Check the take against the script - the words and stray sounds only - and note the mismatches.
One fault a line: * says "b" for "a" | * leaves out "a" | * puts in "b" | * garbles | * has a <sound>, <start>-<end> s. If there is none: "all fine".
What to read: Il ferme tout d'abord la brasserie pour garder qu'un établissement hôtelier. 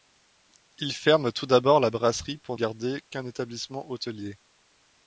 all fine